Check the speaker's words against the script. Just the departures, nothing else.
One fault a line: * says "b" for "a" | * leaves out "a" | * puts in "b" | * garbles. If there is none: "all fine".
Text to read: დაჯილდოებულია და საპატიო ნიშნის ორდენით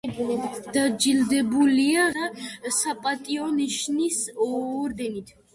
all fine